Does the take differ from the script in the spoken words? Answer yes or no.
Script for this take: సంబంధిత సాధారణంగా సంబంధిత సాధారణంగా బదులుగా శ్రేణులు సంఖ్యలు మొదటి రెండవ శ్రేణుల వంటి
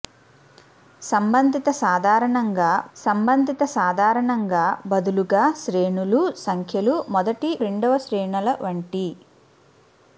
no